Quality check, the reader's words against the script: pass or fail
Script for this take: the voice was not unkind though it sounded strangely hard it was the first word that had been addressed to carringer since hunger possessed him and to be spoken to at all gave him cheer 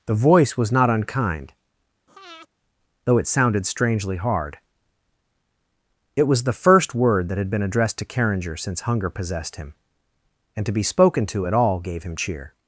pass